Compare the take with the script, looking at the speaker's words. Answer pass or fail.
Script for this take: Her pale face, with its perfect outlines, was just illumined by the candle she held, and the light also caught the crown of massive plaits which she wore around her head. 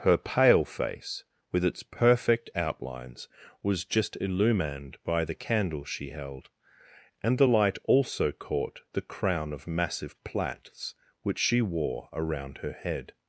pass